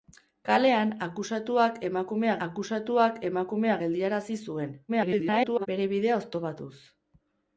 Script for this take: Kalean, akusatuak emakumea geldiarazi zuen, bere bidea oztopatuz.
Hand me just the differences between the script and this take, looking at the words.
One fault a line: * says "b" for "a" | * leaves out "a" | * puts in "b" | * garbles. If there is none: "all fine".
* puts in "akusatuak emakumea"
* garbles